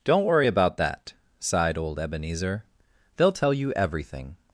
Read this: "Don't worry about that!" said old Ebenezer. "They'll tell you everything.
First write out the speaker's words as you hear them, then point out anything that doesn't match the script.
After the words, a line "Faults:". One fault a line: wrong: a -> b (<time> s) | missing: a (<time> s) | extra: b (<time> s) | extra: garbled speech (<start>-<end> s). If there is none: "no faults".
"Don't worry about that!" sighed old Ebenezer. "They'll tell you everything.
Faults:
wrong: said -> sighed (1.4 s)